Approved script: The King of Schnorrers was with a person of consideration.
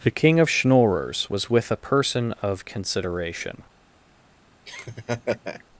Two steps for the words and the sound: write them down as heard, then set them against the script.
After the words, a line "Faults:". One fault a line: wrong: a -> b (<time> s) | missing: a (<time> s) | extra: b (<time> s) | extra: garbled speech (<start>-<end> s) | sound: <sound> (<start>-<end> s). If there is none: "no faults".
The King of Schnorrers was with a person of consideration.
Faults:
sound: laugh (4.7-5.6 s)